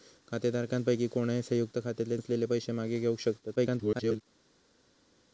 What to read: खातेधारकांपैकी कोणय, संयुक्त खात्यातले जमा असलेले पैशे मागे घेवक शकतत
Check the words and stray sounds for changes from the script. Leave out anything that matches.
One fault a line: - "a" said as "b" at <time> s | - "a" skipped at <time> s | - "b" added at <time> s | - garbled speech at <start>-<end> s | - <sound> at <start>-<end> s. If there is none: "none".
- "जमा" skipped at 2.2 s
- garbled speech at 3.6-4.2 s